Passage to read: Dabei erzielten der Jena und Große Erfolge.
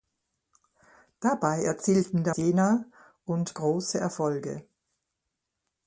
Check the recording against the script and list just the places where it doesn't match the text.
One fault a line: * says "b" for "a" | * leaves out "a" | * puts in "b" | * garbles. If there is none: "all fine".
all fine